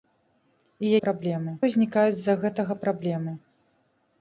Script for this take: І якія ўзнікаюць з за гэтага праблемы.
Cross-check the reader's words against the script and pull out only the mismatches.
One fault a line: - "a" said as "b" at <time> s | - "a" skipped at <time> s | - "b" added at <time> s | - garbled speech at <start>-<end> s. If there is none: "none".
- "якія" said as "праблемы" at 1.0 s